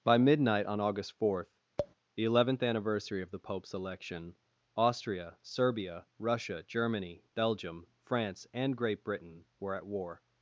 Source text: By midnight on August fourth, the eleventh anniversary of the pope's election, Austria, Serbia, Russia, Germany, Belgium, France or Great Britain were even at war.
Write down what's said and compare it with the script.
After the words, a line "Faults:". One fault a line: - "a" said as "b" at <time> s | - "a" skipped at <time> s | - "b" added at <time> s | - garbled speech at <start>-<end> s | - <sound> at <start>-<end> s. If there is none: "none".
By midnight on August fourth, the eleventh anniversary of the pope's election, Austria, Serbia, Russia, Germany, Belgium, France and Great Britain were at war.
Faults:
- tap at 1.8-1.9 s
- "or" said as "and" at 8.5 s
- "even" skipped at 9.7 s